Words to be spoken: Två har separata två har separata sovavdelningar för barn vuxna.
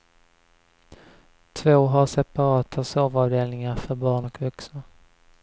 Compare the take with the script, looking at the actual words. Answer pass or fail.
fail